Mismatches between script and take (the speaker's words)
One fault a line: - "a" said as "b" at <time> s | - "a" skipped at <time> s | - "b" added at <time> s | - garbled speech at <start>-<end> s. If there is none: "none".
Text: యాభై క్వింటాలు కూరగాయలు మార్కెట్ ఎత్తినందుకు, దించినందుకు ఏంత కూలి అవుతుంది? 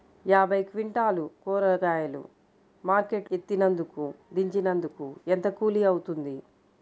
none